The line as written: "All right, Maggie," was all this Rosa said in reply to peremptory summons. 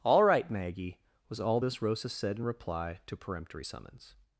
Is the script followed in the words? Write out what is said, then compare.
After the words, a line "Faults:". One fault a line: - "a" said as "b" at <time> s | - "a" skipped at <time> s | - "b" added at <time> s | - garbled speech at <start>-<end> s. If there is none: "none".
"All right, Maggie," was all this Rosa said in reply to peremptory summons.
Faults:
none